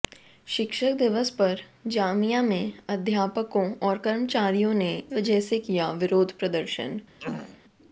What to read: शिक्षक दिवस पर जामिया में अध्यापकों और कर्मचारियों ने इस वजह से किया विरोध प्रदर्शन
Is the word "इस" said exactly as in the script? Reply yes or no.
no